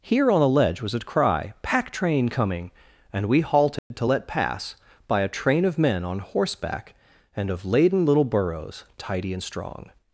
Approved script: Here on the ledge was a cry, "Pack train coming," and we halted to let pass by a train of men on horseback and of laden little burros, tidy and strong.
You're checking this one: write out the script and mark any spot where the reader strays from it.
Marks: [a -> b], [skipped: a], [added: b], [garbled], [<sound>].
Here on the ledge was a cry, "Pack train coming," and we halted [dropout] to let pass by a train of men on horseback and of laden little burros, tidy and strong.